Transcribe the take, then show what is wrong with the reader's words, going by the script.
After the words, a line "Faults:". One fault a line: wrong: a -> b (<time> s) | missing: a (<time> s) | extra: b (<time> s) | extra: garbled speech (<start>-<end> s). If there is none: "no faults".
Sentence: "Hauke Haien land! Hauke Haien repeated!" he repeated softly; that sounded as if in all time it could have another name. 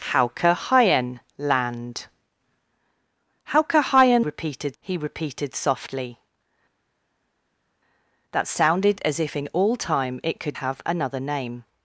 "Hauke Haien land! Hauke Haien repeated!" he repeated softly; that sounded as if in all time it could have another name.
Faults:
no faults